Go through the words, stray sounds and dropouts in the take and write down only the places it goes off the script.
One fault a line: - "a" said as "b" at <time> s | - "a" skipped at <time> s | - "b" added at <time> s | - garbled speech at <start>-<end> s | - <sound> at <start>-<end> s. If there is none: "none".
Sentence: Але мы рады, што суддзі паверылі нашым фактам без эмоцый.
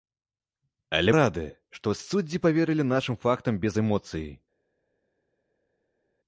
- "мы" skipped at 1.1 s